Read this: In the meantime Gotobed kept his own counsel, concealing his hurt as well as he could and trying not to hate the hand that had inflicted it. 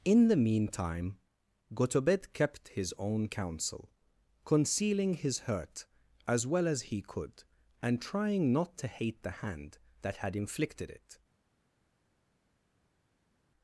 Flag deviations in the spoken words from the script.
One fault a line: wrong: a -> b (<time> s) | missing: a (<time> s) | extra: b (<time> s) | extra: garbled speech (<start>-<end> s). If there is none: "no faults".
no faults